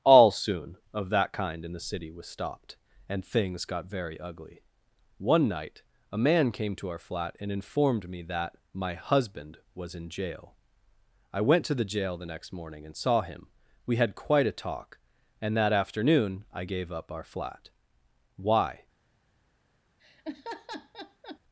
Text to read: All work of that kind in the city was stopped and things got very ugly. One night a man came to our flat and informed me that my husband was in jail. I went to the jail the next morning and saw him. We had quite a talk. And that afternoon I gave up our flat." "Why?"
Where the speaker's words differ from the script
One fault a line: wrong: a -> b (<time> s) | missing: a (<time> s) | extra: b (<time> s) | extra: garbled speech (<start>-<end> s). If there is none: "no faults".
wrong: work -> soon (0.3 s)